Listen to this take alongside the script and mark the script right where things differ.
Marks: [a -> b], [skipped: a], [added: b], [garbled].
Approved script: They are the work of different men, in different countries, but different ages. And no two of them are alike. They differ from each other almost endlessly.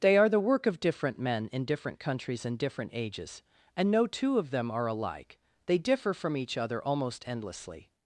They are the work of different men, in different countries, [but -> and] different ages. And no two of them are alike. They differ from each other almost endlessly.